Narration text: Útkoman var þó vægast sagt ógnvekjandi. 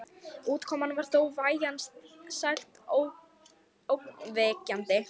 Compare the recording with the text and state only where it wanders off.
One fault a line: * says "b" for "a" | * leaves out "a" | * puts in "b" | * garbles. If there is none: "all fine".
all fine